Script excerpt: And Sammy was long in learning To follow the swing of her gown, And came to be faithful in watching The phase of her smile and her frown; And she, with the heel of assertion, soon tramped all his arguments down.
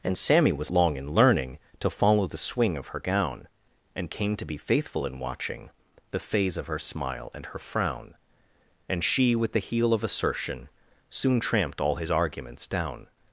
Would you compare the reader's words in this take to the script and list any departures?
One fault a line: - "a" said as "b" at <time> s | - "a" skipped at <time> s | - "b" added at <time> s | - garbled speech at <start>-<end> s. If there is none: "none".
none